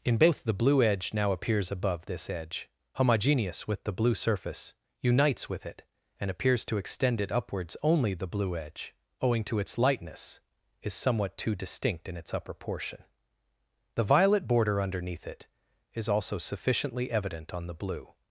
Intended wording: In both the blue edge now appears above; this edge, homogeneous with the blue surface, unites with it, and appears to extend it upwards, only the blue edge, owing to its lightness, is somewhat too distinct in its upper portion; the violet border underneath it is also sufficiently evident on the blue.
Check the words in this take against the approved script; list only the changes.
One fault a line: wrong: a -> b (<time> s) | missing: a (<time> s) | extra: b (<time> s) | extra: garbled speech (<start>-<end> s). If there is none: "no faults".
no faults